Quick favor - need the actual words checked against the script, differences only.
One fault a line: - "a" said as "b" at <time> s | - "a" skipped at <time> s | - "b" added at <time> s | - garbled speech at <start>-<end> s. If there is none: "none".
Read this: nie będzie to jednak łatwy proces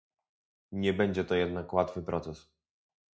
none